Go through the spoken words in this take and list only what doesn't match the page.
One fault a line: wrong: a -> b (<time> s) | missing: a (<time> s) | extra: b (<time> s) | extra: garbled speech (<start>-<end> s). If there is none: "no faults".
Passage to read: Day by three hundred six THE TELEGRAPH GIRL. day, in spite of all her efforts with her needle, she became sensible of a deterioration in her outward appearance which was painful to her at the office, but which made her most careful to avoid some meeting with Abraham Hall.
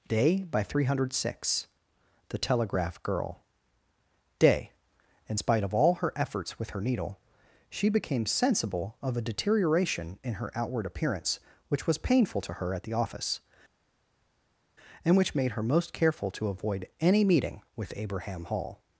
wrong: but -> and (15.0 s)
wrong: some -> any (17.0 s)